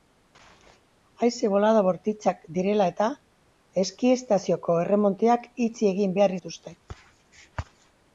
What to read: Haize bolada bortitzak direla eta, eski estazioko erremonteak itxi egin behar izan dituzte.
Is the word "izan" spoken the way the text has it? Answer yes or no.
no